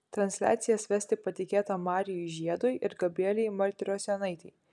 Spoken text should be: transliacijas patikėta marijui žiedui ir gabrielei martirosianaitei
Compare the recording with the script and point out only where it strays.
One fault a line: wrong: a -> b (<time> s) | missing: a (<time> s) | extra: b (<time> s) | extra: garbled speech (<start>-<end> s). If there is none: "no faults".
extra: vesti (0.9 s)